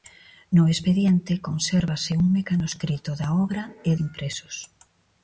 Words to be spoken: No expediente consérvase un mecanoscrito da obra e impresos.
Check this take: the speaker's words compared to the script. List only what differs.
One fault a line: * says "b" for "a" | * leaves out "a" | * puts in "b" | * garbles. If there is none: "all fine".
all fine